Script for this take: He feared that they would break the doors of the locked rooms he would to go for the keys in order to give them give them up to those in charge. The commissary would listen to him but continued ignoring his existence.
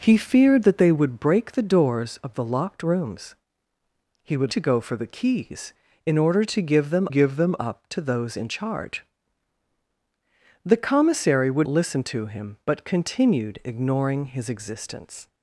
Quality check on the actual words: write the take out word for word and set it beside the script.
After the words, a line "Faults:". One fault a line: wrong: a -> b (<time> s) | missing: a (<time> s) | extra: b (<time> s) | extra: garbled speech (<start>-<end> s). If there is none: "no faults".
He feared that they would break the doors of the locked rooms he would to go for the keys in order to give them give them up to those in charge. The commissary would listen to him but continued ignoring his existence.
Faults:
no faults